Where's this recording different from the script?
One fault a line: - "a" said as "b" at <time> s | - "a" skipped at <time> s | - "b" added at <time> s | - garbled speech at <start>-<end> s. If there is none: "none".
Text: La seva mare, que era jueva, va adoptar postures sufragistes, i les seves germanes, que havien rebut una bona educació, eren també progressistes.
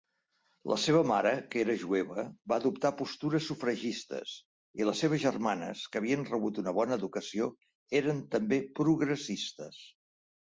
none